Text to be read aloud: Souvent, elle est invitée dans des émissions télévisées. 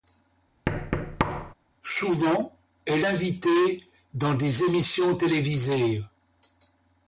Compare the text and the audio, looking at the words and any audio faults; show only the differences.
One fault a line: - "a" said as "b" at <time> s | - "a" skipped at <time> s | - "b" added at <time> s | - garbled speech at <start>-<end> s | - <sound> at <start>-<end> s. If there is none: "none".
- thud at 0.7-1.5 s
- "est" skipped at 3.0 s